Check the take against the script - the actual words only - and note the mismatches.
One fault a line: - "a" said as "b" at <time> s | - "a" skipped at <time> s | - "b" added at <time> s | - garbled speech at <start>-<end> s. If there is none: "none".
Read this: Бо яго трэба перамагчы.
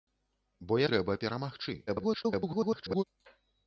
- "яго" skipped at 0.8 s
- garbled speech at 1.9-3.0 s